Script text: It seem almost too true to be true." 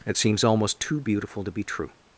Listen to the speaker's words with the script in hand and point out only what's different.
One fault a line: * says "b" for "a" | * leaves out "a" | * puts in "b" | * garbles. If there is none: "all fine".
* says "seems" for "seem"
* says "beautiful" for "true"